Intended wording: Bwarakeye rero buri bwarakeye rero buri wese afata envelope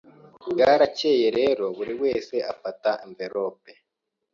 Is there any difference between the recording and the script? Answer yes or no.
yes